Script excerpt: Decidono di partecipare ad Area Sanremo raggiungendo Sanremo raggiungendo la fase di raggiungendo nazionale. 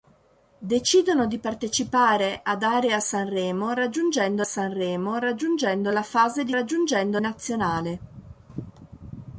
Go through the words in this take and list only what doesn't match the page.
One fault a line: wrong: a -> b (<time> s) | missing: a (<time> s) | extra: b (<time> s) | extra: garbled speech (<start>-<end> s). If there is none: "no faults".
no faults